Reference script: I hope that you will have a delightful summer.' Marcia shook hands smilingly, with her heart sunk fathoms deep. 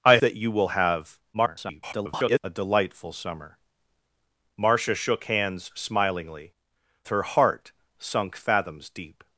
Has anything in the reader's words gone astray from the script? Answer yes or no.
yes